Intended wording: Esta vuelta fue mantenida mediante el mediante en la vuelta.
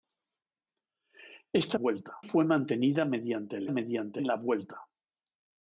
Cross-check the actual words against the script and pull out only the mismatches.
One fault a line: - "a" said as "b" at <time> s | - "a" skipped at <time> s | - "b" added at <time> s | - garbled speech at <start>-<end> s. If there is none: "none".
none